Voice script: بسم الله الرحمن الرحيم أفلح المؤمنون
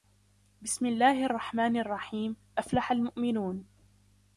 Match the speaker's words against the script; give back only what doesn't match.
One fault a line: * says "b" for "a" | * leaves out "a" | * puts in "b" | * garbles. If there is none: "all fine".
all fine